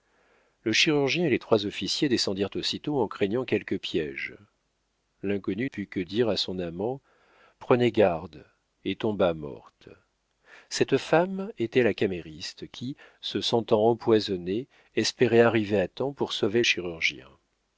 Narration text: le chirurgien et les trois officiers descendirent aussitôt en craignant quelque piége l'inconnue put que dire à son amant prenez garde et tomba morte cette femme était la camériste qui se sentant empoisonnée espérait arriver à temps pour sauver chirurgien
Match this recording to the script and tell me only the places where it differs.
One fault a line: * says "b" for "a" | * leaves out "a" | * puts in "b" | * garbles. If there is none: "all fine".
all fine